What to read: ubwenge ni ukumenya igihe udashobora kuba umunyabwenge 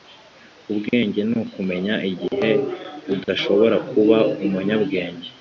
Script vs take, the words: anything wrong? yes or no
no